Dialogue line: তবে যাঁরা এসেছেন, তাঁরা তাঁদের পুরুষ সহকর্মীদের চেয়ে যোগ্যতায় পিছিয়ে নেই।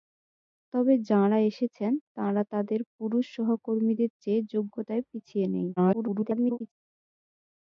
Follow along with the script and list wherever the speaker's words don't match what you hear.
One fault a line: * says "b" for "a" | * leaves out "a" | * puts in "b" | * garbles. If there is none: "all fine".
* garbles